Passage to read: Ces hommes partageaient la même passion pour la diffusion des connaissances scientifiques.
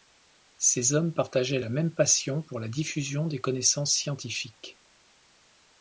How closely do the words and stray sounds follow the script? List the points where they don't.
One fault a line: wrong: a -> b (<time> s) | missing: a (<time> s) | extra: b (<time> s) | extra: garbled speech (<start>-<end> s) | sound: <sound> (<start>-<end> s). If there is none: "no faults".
no faults